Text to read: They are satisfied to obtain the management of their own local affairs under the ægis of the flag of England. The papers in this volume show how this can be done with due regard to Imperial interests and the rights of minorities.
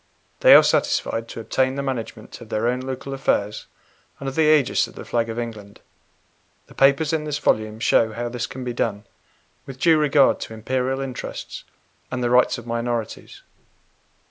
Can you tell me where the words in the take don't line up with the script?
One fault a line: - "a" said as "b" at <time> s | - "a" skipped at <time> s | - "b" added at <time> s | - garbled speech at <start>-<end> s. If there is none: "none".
none